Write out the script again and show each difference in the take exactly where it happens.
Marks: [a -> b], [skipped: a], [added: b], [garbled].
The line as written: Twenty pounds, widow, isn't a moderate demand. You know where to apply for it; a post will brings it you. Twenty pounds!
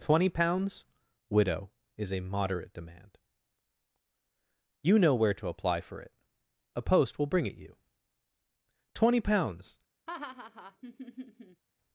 Twenty pounds, widow, [isn't -> is] a moderate demand. You know where to apply for it; a post will [brings -> bring] it you. Twenty pounds!